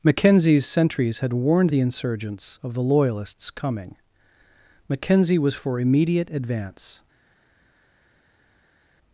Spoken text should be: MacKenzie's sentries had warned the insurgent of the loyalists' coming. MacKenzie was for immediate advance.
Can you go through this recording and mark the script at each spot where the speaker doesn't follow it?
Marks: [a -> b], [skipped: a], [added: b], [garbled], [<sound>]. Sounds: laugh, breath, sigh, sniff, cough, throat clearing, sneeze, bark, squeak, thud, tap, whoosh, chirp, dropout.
MacKenzie's sentries had warned the [insurgent -> insurgents] of the loyalists' coming. MacKenzie was for immediate advance.